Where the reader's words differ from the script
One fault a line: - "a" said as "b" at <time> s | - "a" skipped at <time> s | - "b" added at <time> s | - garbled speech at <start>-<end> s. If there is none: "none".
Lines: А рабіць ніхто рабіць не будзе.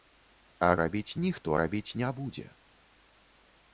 none